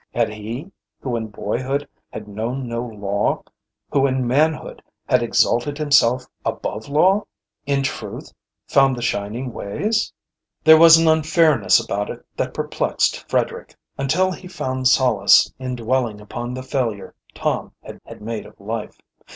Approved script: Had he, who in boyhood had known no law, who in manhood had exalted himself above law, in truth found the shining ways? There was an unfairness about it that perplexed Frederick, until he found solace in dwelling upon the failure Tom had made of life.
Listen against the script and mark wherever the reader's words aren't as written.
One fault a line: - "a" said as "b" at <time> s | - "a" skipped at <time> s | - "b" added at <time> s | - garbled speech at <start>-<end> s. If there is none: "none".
- "had" added at 18.1 s